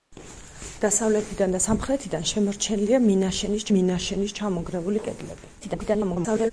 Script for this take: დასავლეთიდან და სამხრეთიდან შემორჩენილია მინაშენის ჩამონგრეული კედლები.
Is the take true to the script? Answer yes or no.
no